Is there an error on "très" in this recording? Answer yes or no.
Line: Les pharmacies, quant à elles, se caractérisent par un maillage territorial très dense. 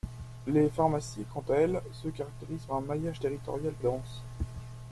yes